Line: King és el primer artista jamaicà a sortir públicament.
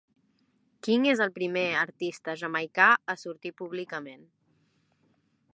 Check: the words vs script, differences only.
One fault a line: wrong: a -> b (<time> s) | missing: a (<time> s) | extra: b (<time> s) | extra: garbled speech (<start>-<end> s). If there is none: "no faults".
no faults